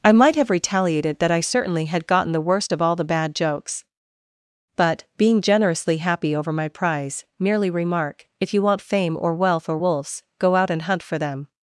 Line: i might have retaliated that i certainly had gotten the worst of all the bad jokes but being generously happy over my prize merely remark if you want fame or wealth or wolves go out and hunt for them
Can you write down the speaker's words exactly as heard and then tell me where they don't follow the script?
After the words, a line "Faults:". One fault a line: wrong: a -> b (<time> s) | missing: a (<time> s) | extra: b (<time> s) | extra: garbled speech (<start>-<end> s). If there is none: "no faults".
i might have retaliated that i certainly had gotten the worst of all the bad jokes but being generously happy over my prize merely remark if you want fame or wealth or wolves go out and hunt for them
Faults:
no faults